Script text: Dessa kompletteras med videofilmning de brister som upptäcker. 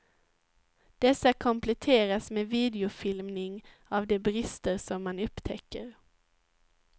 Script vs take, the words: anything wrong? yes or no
yes